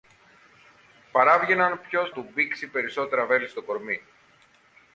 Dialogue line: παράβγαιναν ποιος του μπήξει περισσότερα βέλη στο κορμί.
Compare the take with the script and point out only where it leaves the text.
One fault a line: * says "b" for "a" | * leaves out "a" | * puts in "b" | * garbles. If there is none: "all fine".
all fine